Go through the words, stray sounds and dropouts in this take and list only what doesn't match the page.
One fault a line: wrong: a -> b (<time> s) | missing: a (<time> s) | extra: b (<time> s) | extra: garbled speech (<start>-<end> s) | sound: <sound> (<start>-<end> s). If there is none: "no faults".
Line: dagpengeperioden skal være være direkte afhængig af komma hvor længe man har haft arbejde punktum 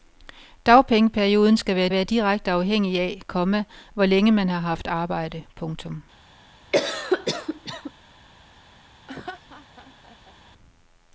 sound: cough (6.7-7.9 s)
sound: laugh (9.1-10.3 s)